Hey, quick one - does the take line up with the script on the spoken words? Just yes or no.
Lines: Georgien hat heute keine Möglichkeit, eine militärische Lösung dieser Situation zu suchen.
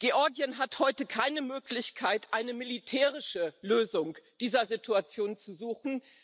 yes